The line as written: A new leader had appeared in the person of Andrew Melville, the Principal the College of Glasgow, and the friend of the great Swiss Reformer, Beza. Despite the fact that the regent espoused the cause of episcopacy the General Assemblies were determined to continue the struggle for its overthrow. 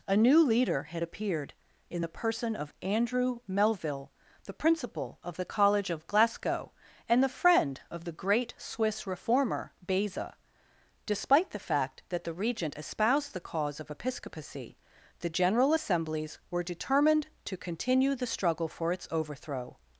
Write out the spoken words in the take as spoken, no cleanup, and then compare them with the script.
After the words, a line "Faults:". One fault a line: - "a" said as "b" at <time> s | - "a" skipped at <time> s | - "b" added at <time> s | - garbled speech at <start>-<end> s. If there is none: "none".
A new leader had appeared in the person of Andrew Melville, the Principal of the College of Glasgow, and the friend of the great Swiss Reformer, Beza. Despite the fact that the regent espoused the cause of episcopacy the General Assemblies were determined to continue the struggle for its overthrow.
Faults:
- "of" added at 5.2 s